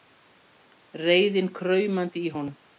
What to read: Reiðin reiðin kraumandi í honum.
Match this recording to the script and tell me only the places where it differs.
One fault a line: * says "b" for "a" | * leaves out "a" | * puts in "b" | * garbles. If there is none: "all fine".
* leaves out "reiðin"